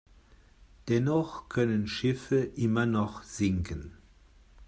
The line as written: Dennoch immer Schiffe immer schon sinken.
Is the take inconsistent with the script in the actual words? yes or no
yes